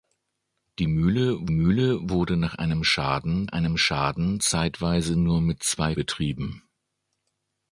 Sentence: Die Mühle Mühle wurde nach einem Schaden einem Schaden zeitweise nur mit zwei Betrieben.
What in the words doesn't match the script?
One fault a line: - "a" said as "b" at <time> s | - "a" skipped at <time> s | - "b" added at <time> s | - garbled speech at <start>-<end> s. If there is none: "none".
none